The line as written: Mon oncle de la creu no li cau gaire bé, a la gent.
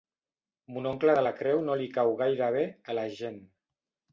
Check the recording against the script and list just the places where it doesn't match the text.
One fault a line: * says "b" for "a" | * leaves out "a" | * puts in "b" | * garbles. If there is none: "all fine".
all fine